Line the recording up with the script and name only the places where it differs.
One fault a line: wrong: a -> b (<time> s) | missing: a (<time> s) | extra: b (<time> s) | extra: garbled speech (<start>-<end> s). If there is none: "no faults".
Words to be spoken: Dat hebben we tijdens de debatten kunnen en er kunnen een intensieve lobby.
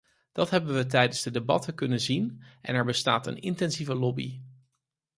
extra: zien (2.0 s)
wrong: kunnen -> bestaat (2.8 s)